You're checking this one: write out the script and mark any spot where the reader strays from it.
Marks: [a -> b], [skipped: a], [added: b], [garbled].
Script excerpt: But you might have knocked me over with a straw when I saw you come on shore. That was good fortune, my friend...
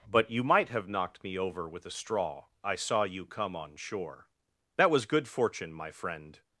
But you might have knocked me over with a straw [skipped: when] I saw you come on shore. That was good fortune, my friend...